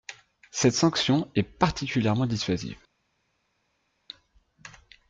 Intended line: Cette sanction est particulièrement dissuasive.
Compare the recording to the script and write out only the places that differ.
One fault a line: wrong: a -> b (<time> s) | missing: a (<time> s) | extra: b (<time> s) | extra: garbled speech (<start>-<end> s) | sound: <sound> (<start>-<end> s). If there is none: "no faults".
no faults